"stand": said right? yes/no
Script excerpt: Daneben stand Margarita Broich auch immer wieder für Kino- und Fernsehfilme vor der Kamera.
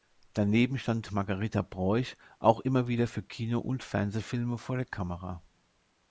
yes